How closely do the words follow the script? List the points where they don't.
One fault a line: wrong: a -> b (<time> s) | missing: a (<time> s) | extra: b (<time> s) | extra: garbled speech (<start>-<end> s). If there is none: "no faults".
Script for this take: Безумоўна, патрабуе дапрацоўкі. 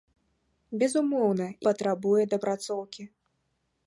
no faults